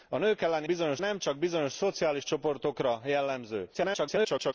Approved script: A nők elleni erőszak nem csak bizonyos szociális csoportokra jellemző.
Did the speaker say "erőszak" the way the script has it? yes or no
no